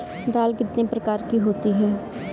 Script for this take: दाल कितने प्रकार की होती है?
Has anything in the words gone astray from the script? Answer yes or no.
no